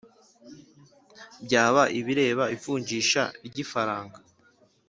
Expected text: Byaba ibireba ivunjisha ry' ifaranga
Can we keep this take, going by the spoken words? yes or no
yes